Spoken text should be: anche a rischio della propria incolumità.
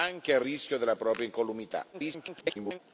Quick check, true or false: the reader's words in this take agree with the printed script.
false